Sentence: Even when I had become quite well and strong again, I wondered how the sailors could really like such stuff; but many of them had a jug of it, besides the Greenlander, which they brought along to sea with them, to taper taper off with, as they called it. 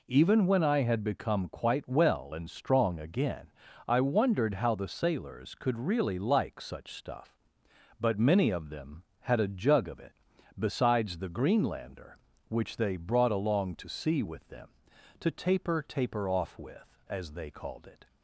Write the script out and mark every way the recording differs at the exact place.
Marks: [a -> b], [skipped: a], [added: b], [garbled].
Even when I had become quite well and strong again, I wondered how the sailors could really like such stuff; but many of them had a jug of it, besides the Greenlander, which they brought along to sea with them, to taper taper off with, as they called it.